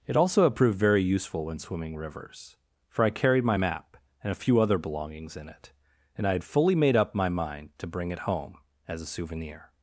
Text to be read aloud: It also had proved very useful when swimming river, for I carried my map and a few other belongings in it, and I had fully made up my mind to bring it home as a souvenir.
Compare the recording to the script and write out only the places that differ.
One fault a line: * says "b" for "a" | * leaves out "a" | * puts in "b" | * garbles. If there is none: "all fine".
* says "rivers" for "river"